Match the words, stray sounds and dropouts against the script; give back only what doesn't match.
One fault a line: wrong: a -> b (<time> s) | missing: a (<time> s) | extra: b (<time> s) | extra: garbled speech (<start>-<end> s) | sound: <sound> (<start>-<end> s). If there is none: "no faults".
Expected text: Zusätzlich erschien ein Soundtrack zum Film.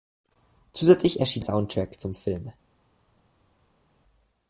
missing: ein (1.4 s)